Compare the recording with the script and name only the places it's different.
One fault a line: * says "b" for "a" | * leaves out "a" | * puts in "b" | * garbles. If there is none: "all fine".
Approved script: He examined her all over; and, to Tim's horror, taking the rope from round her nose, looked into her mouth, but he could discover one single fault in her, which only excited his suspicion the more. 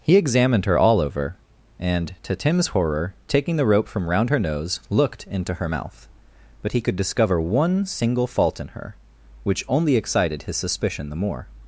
all fine